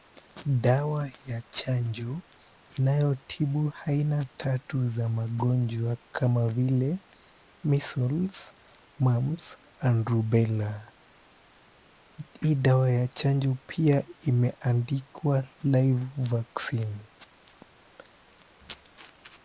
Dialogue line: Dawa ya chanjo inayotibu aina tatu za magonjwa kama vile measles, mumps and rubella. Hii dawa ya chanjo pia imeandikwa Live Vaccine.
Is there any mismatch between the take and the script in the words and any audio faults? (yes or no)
no